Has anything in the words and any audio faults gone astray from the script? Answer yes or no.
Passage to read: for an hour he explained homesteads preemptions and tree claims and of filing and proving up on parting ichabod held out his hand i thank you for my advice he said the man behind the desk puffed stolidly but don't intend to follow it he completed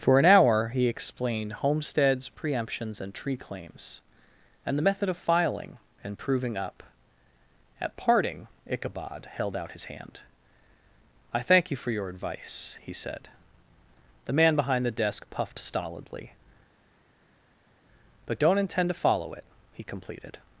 yes